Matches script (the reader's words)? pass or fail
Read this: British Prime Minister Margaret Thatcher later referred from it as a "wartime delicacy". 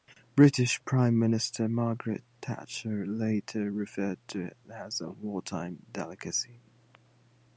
fail